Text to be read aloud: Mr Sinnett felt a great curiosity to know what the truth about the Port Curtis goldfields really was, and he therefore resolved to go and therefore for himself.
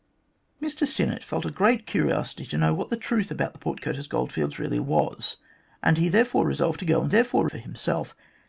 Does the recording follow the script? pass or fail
pass